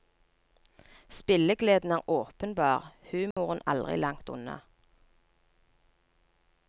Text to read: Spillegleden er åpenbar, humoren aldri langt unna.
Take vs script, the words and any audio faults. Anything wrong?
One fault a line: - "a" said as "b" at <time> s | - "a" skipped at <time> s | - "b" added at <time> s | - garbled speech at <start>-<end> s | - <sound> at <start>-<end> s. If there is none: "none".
- dropout at 3.3-3.4 s